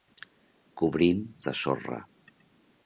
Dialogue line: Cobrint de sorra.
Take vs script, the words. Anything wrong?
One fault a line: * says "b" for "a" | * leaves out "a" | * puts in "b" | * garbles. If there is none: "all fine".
all fine